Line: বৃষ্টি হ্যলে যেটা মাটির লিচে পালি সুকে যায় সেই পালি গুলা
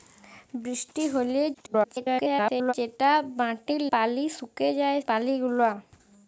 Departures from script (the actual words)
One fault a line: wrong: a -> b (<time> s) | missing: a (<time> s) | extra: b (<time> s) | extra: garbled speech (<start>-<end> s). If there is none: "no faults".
extra: garbled speech (1.5-2.7 s)
missing: লিচে (3.8 s)
missing: সেই (5.0 s)